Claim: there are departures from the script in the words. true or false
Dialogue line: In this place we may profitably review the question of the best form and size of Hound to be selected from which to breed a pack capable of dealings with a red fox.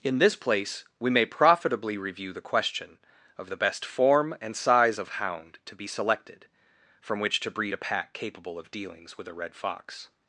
false